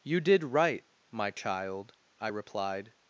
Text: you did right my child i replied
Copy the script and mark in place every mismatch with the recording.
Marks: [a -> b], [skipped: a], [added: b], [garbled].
you did right my child i replied